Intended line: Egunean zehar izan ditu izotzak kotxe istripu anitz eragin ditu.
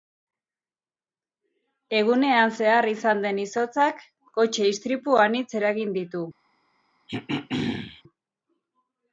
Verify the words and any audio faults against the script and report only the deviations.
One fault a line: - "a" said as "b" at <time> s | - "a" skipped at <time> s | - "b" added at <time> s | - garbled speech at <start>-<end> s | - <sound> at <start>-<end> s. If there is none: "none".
- "ditu" said as "den" at 3.3 s
- throat clearing at 7.1-8.0 s